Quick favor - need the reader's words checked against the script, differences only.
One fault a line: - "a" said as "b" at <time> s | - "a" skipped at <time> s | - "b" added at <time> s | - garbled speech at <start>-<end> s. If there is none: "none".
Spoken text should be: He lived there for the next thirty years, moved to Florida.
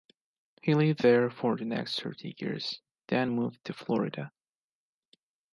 - "then" added at 3.1 s